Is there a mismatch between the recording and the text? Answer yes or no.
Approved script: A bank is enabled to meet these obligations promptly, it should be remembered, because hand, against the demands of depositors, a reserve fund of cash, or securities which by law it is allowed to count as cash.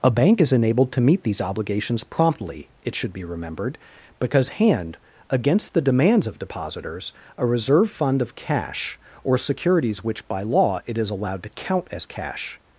no